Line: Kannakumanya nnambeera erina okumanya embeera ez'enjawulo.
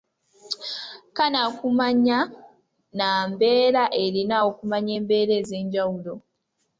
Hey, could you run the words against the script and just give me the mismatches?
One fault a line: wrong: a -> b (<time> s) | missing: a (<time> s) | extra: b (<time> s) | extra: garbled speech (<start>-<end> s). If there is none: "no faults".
no faults